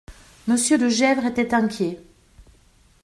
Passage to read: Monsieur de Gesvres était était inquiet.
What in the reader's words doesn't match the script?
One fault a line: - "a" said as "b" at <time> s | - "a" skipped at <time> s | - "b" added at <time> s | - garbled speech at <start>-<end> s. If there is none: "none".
- "était" skipped at 1.5 s